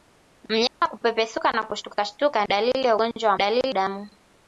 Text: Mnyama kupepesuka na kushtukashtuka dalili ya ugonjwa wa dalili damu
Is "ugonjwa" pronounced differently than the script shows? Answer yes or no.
no